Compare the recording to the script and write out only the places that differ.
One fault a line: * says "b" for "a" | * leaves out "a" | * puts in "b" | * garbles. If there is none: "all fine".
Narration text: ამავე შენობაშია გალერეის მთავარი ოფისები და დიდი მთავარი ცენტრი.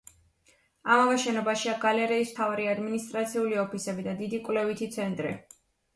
* puts in "ადმინისტრაციული"
* says "კვლევითი" for "მთავარი"